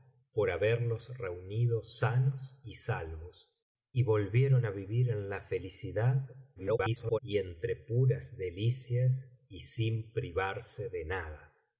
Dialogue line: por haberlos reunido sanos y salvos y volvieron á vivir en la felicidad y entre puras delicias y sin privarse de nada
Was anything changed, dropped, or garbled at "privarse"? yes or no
no